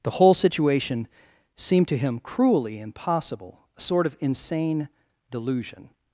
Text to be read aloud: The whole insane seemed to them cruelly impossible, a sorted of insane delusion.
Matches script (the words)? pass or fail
fail